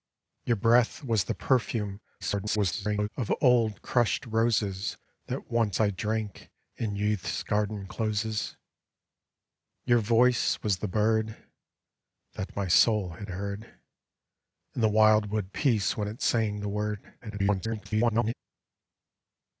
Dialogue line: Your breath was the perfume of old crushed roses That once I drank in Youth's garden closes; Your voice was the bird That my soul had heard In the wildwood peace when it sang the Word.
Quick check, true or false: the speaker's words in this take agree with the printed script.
false